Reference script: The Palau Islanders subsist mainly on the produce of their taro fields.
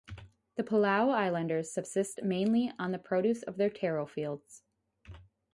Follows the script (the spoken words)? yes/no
yes